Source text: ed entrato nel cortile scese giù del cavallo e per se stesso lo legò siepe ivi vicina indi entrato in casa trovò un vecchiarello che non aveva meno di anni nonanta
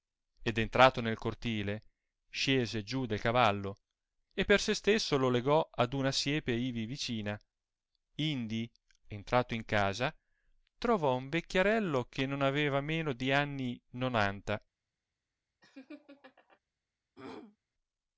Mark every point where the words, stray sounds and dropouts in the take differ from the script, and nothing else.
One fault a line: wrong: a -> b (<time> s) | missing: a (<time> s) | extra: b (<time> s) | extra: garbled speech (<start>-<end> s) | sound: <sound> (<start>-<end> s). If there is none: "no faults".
extra: ad una (5.7 s)
sound: laugh (15.6-16.6 s)
sound: throat clearing (17.2-17.6 s)